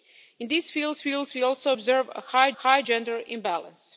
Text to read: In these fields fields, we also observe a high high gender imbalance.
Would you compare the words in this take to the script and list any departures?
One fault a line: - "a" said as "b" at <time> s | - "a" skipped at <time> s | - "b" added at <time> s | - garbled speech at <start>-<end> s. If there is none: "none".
none